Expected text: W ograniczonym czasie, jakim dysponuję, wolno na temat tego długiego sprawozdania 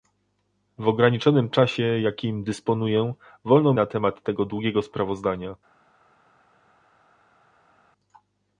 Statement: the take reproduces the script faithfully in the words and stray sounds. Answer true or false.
true